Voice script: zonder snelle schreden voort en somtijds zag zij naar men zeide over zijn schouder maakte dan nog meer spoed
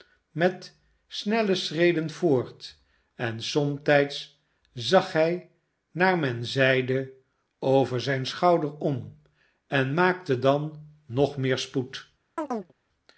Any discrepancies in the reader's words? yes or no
yes